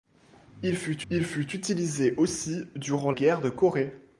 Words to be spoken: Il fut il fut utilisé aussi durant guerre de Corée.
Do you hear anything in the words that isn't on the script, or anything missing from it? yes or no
no